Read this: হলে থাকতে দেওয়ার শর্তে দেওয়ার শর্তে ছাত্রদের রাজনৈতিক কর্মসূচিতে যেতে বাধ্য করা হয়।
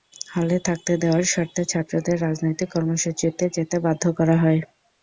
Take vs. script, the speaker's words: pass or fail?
fail